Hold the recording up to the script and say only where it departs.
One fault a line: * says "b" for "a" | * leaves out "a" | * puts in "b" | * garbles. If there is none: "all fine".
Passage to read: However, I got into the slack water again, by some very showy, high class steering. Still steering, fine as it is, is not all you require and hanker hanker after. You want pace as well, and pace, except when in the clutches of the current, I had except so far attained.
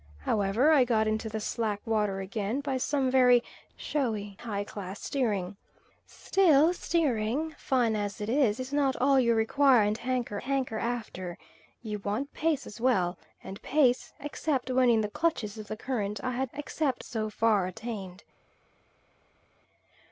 all fine